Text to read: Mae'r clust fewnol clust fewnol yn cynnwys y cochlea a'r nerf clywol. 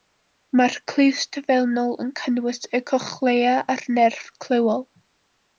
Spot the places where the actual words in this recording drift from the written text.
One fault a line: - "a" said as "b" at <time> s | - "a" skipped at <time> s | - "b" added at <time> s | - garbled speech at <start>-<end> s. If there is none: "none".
- "clust fewnol" skipped at 1.9 s